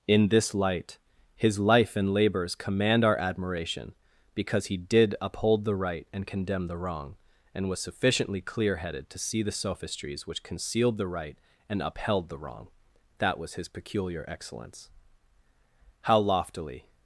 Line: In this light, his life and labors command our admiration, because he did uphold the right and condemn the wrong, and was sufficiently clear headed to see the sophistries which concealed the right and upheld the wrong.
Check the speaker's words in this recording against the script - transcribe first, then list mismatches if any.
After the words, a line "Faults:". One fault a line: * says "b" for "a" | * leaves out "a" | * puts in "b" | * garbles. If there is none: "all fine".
In this light, his life and labors command our admiration, because he did uphold the right and condemn the wrong, and was sufficiently clear headed to see the sophistries which concealed the right and upheld the wrong. That was his peculiar excellence. How loftily
Faults:
* puts in "That was his peculiar excellence How loftily"